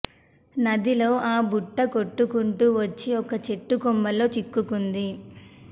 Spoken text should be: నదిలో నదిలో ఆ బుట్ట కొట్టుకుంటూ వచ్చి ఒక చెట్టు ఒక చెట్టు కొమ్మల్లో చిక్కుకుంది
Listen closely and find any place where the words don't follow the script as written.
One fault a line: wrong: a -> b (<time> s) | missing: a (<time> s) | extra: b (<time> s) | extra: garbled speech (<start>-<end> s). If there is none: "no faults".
missing: నదిలో (1.1 s)
missing: ఒక చెట్టు (3.8 s)